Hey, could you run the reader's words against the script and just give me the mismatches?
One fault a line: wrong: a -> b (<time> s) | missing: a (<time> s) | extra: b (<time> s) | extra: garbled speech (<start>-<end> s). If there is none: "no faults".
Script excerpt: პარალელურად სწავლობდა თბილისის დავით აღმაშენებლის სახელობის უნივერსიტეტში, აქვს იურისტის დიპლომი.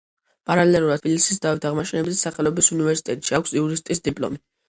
missing: სწავლობდა (1.0 s)